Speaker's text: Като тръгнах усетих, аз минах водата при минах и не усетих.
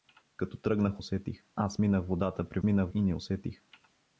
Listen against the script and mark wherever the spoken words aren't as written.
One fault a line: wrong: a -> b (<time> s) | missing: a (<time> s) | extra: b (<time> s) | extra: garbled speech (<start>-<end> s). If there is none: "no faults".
no faults